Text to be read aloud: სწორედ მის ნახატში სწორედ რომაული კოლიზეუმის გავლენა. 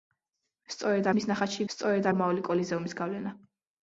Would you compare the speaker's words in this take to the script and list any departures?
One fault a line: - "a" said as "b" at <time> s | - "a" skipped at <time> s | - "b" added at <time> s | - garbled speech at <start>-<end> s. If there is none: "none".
none